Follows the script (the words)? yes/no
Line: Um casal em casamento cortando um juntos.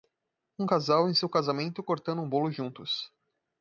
no